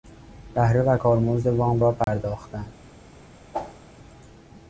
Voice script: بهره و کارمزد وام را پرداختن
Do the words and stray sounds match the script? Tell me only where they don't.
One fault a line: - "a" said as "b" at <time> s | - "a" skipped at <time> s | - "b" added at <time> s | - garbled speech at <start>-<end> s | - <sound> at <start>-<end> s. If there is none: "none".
- dropout at 2.0-2.1 s
- whoosh at 3.5-3.8 s